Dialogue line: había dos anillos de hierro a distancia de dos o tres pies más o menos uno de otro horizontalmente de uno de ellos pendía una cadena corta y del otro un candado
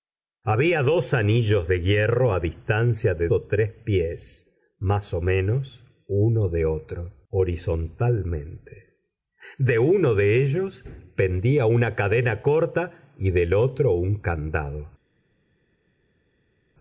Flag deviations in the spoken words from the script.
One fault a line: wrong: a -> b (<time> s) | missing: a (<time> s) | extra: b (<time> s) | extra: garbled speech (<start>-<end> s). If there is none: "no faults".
missing: dos (3.3 s)